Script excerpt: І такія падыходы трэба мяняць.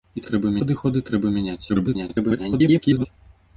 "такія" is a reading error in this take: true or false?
true